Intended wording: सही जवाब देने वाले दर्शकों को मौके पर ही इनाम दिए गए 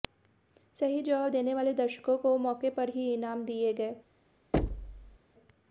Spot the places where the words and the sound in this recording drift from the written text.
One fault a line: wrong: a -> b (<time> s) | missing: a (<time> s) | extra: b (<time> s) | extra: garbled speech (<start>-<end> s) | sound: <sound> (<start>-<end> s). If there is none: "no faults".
sound: thud (4.5-5.2 s)